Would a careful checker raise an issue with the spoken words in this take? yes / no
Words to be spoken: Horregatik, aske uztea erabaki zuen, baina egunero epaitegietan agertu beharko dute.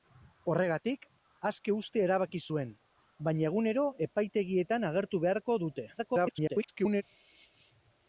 yes